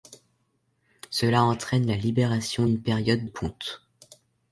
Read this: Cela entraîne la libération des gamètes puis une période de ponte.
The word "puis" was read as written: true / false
false